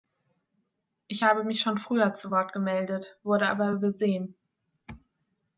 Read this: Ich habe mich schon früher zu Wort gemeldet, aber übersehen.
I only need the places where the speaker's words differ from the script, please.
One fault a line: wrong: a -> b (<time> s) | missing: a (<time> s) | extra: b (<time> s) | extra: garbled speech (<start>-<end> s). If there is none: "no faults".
extra: wurde (3.2 s)